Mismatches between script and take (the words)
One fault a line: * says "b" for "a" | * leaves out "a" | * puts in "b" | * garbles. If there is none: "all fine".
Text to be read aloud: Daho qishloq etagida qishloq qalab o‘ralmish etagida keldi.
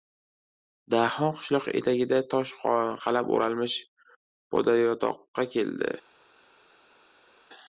* says "tosh" for "qishloq"
* says "podayotoqqa" for "etagida"